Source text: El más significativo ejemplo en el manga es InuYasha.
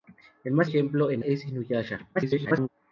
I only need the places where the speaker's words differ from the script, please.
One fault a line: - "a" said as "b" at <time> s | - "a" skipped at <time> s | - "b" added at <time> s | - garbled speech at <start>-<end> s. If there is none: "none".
- "significativo" skipped at 0.7 s
- "el manga" skipped at 1.2 s
- garbled speech at 2.1-2.7 s